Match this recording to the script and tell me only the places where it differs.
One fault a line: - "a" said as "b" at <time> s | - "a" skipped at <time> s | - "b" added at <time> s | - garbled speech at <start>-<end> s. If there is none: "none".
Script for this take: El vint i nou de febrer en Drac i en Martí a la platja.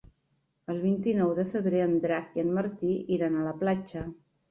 - "iran" added at 3.2 s